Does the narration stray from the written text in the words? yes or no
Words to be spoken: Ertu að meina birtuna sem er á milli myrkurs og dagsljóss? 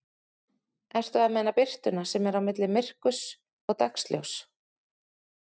no